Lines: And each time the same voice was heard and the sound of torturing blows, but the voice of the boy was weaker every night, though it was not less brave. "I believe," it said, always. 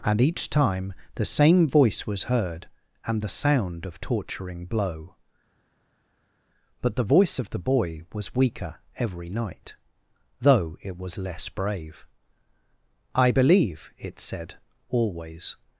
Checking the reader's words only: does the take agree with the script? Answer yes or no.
no